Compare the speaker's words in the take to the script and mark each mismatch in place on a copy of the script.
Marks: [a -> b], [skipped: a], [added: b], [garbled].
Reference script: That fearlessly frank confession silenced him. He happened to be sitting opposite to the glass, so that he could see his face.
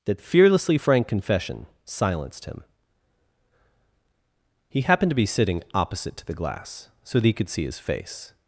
That fearlessly frank confession silenced him. He happened to be sitting opposite to the glass, so that he could see his face.